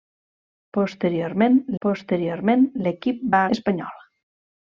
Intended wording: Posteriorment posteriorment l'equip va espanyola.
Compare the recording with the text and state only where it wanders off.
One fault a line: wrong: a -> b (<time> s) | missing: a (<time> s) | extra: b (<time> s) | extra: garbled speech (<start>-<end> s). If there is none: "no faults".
no faults